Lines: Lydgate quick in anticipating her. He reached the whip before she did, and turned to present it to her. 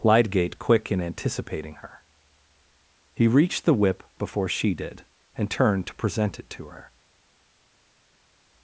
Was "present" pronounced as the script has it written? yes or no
yes